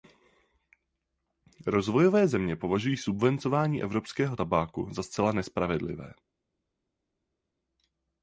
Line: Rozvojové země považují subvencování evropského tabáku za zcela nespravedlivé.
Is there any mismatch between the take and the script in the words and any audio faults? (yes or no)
no